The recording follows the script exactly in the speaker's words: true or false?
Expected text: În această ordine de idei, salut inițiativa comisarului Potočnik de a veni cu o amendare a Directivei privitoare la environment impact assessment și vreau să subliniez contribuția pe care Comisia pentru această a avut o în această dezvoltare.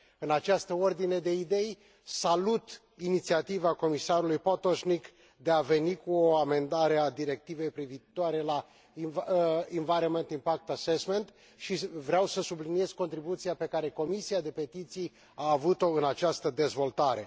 false